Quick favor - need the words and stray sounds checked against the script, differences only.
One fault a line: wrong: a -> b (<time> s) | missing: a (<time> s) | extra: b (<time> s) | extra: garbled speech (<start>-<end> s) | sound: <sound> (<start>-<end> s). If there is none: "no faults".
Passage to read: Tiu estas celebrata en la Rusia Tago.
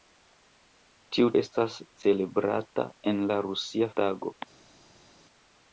no faults